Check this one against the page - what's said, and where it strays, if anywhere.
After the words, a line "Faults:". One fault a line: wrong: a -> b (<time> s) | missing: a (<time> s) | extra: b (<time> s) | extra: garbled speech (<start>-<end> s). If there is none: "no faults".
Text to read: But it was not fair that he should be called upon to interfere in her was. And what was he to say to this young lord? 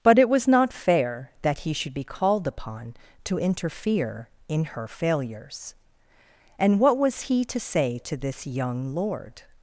But it was not fair that he should be called upon to interfere in her failures. And what was he to say to this young lord?
Faults:
wrong: was -> failures (4.9 s)